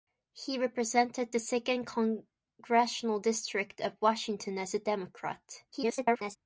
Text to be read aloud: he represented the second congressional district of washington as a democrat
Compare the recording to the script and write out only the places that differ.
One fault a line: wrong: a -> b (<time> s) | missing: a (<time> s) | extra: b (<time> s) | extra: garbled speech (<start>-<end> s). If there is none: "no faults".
extra: garbled speech (5.7-6.4 s)